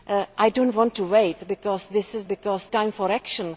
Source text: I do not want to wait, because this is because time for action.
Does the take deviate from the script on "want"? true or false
false